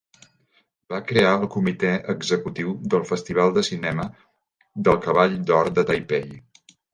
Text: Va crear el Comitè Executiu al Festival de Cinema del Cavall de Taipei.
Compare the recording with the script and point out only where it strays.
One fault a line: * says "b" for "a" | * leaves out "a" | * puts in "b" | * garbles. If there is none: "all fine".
* says "del" for "al"
* puts in "d'Or"